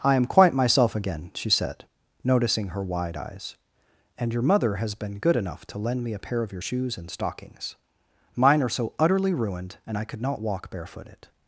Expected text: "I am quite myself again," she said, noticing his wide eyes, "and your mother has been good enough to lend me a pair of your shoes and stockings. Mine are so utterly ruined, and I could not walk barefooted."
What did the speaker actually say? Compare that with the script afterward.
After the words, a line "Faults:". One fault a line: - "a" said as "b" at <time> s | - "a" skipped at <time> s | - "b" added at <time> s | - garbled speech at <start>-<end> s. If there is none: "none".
"I am quite myself again," she said, noticing her wide eyes, "and your mother has been good enough to lend me a pair of your shoes and stockings. Mine are so utterly ruined, and I could not walk barefooted."
Faults:
- "his" said as "her" at 2.7 s